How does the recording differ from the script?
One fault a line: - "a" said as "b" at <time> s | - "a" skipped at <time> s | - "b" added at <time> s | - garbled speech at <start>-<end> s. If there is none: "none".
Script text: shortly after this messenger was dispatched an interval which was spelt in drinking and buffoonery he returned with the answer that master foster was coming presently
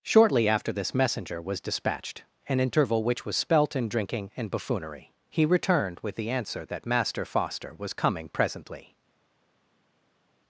none